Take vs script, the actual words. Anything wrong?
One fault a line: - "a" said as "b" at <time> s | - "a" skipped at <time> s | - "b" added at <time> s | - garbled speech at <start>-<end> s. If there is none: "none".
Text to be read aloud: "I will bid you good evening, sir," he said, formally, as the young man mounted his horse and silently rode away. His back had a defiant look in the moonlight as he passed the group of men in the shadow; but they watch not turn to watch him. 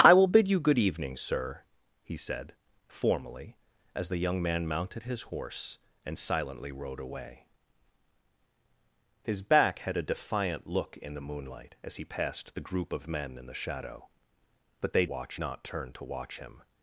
none